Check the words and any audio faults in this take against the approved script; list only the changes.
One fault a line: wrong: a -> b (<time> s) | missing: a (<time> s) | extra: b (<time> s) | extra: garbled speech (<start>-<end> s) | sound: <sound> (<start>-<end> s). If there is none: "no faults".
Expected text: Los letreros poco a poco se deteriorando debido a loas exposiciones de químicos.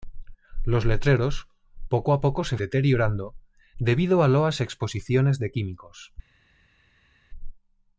no faults